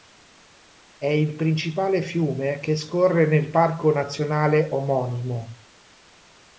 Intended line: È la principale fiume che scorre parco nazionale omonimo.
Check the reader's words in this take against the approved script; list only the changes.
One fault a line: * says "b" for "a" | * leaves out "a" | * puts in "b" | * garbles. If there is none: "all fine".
* says "il" for "la"
* puts in "nel"